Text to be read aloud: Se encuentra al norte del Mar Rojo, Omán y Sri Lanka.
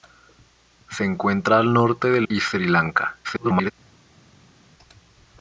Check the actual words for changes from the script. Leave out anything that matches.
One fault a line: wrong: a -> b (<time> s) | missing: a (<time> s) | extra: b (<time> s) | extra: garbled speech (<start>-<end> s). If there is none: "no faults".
missing: Mar Rojo Omán (2.3 s)
extra: garbled speech (3.2-3.7 s)